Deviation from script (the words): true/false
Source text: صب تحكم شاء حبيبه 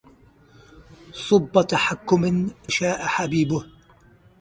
false